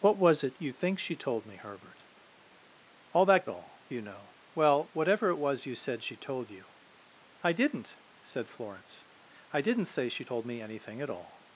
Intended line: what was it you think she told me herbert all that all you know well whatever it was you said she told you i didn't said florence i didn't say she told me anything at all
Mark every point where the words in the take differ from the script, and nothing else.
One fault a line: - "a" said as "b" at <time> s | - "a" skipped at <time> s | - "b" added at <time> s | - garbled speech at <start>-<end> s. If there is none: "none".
none